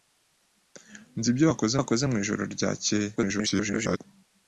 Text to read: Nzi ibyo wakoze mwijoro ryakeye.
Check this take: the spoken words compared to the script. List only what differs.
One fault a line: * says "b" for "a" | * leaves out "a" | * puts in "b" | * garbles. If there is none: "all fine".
* puts in "wakoze"
* garbles